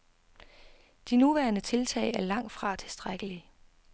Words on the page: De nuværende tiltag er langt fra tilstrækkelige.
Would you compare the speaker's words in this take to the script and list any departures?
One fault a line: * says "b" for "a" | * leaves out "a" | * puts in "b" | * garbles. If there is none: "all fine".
all fine